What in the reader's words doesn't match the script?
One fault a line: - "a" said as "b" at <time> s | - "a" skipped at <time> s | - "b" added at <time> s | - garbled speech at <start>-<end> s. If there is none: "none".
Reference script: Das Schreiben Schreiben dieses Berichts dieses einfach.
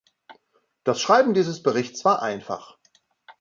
- "Schreiben" skipped at 1.4 s
- "dieses" said as "war" at 2.0 s